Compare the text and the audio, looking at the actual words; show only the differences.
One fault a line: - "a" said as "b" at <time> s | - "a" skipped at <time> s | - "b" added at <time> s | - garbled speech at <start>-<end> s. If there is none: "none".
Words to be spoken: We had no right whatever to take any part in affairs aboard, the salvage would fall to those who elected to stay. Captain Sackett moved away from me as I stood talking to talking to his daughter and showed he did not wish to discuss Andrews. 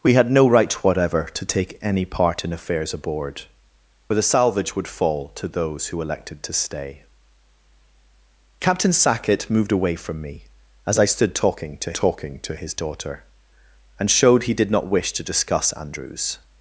none